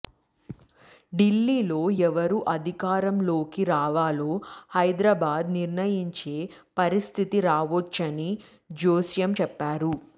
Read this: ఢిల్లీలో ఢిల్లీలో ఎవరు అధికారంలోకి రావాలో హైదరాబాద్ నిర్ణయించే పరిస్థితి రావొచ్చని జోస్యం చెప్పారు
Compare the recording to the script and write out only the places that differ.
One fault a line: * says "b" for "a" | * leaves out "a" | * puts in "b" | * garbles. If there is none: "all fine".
* leaves out "ఢిల్లీలో"